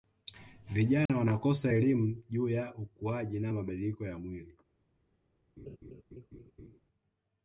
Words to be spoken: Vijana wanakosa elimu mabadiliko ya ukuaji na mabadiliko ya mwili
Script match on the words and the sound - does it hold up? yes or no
no